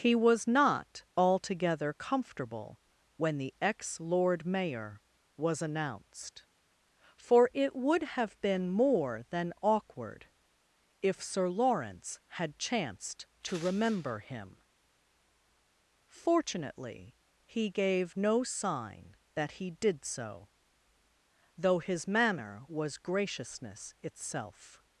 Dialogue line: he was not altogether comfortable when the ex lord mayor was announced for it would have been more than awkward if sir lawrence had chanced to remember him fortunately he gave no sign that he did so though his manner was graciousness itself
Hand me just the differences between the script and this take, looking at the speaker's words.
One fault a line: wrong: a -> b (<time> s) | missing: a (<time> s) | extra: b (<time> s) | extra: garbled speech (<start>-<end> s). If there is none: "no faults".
no faults